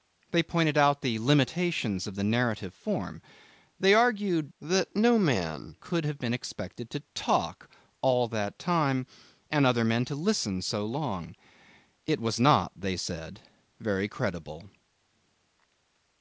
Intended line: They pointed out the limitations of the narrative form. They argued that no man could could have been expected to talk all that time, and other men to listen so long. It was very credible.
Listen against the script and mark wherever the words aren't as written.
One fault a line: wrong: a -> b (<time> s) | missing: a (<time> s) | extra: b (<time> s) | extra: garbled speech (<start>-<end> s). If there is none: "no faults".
missing: could (6.0 s)
extra: not they said (12.4 s)